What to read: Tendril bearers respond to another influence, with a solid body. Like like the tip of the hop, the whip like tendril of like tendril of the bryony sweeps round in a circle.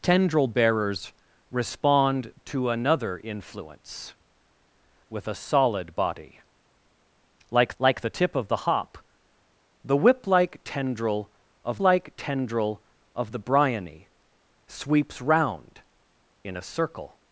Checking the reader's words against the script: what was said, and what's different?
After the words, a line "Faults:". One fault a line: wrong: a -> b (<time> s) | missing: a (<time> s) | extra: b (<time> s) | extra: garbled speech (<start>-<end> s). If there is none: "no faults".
Tendril bearers respond to another influence, with a solid body. Like like the tip of the hop, the whip like tendril of like tendril of the bryony sweeps round in a circle.
Faults:
no faults